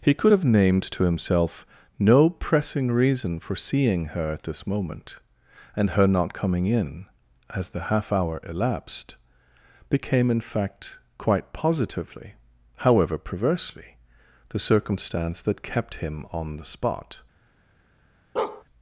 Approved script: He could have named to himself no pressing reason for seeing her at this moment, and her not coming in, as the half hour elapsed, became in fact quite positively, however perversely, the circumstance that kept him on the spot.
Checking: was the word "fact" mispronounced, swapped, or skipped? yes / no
no